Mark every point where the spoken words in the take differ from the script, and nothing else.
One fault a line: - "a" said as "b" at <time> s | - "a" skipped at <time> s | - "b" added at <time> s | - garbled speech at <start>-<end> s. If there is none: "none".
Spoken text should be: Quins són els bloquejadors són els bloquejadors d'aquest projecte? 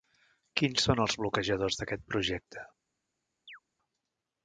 - "són els bloquejadors" skipped at 1.8 s